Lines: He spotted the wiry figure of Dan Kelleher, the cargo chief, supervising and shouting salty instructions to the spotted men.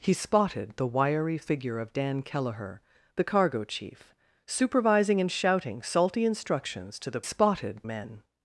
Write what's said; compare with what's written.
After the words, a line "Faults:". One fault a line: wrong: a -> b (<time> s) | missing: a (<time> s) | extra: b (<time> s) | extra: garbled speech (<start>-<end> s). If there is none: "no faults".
He spotted the wiry figure of Dan Kelleher, the cargo chief, supervising and shouting salty instructions to the spotted men.
Faults:
no faults